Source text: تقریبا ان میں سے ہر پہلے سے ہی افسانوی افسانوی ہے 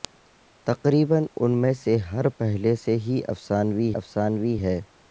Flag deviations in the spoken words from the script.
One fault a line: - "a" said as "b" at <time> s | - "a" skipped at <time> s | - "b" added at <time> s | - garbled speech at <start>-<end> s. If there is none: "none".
none